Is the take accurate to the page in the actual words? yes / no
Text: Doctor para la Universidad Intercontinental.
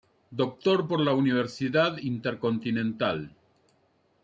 no